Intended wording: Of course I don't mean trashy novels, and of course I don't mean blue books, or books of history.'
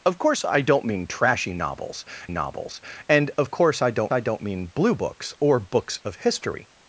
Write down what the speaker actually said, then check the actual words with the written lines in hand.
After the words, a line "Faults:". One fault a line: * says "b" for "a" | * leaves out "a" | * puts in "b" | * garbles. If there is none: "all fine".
Of course I don't mean trashy novels novels, and of course I don't I don't mean blue books, or books of history.'
Faults:
* puts in "novels"
* puts in "I don't"